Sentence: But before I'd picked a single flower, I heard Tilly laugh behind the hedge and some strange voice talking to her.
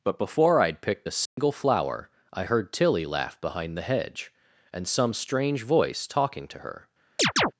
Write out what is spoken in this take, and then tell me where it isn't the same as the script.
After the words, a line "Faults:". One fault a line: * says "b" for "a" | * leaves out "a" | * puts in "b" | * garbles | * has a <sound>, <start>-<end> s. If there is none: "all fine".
But before I'd picked a single flower, I heard Tilly laugh behind the hedge and some strange voice talking to her.
Faults:
* has a dropout, 1.3-1.4 s
* has a chirp, 7.2-7.5 s